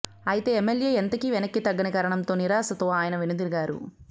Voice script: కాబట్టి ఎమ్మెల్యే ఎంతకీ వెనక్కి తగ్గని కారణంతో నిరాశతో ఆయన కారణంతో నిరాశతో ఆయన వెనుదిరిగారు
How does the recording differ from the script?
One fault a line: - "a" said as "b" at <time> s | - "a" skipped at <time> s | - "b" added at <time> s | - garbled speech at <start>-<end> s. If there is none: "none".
- "కాబట్టి" said as "అయితే" at 0.3 s
- "కారణంతో నిరాశతో ఆయన" skipped at 3.2 s